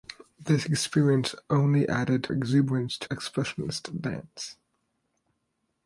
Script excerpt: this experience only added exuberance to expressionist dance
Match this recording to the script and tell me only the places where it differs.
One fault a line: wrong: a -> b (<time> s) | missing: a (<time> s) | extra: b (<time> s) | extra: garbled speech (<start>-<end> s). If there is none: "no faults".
no faults